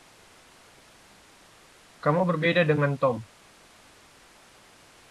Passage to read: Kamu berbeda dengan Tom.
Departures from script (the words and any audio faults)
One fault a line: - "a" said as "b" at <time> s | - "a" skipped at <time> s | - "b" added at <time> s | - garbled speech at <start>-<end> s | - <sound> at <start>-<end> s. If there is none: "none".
none